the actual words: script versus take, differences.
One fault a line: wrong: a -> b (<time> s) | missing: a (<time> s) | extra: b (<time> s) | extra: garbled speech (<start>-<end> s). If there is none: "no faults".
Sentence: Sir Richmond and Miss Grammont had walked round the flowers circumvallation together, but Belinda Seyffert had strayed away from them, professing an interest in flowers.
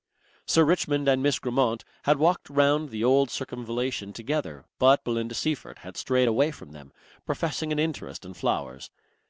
wrong: flowers -> old (3.0 s)